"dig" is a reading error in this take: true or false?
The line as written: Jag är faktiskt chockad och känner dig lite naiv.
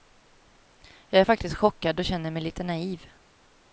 true